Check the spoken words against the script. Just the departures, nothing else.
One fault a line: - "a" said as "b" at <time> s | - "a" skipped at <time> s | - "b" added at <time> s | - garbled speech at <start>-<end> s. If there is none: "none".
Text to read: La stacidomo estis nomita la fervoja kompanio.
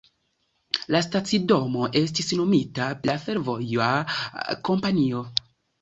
none